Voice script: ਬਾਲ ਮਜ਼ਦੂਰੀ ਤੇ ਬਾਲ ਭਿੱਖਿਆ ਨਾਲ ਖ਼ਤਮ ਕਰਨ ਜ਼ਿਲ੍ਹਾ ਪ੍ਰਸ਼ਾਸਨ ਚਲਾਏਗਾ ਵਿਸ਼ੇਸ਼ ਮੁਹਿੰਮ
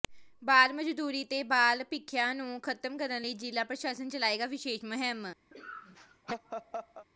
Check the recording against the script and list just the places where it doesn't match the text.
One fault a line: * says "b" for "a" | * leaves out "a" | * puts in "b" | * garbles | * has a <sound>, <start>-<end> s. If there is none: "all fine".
* says "ਨੂੰ" for "ਨਾਲ"
* puts in "ਲਈ"
* has a laugh, 5.5-7.1 s